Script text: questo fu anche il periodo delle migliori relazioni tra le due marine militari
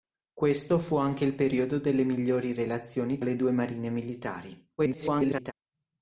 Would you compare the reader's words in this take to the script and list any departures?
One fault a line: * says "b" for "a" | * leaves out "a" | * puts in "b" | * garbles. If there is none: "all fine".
* leaves out "tra"
* garbles